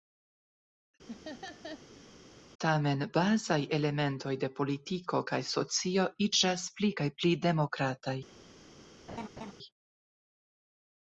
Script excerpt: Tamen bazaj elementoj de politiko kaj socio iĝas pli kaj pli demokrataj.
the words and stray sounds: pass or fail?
fail